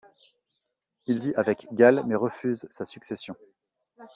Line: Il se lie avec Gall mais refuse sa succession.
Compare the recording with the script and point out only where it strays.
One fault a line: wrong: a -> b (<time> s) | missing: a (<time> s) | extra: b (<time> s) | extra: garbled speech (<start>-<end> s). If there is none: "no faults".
missing: se (1.2 s)